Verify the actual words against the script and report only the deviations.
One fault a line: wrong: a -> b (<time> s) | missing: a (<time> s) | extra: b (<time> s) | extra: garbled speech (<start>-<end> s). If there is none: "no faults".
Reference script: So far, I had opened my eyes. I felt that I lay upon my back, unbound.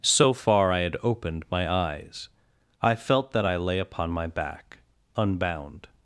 no faults